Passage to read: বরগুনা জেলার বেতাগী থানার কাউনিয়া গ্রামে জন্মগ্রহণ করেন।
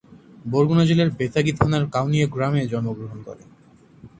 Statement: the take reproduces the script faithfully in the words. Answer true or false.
true